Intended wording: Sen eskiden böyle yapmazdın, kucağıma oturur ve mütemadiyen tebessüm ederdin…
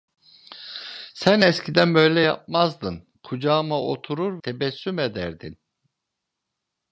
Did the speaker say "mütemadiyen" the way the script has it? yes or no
no